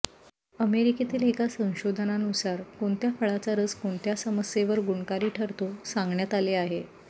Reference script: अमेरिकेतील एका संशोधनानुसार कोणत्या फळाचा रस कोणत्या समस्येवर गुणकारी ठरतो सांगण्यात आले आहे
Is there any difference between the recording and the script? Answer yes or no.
no